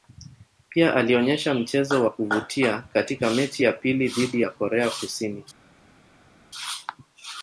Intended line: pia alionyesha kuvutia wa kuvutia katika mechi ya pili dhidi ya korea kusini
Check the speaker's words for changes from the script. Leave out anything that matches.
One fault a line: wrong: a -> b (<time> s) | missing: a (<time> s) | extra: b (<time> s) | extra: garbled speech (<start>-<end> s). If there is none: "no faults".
wrong: kuvutia -> mchezo (1.5 s)